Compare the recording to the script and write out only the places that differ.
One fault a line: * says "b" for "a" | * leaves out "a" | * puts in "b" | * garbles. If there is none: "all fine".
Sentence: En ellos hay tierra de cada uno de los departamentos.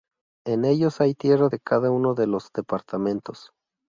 all fine